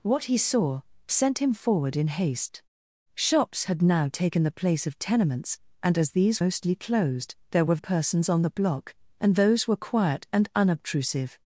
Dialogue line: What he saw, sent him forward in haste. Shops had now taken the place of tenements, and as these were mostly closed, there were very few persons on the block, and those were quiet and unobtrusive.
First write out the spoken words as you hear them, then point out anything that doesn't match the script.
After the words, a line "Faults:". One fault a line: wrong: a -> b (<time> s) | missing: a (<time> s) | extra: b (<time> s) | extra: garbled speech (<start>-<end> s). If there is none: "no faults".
What he saw, sent him forward in haste. Shops had now taken the place of tenements, and as these mostly closed, there were persons on the block, and those were quiet and unobtrusive.
Faults:
missing: were (6.4 s)
missing: very few (7.8 s)